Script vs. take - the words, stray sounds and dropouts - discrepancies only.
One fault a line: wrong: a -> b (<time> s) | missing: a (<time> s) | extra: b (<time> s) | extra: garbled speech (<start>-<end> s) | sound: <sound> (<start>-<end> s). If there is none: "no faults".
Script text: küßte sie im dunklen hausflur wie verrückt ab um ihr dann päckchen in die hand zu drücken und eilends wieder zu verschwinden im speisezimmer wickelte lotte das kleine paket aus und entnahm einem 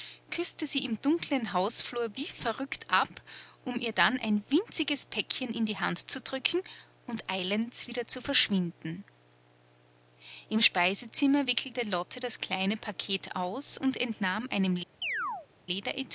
extra: ein winziges (4.2 s)
sound: chirp (15.0-15.5 s)